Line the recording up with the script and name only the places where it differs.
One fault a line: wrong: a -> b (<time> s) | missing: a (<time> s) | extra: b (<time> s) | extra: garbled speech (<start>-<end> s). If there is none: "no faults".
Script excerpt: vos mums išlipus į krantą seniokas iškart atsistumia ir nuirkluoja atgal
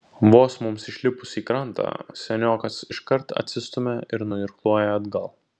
no faults